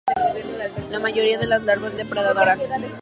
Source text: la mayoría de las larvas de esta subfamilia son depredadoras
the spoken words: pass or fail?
fail